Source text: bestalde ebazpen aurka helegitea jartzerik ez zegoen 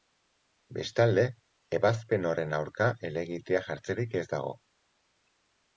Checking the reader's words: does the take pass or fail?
fail